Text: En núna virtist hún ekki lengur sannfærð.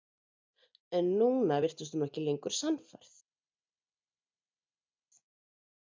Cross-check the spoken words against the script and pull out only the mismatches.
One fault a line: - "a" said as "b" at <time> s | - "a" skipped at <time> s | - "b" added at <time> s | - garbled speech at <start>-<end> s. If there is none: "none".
none